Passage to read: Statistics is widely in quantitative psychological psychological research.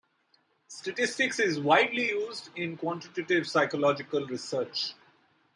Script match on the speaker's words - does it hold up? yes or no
no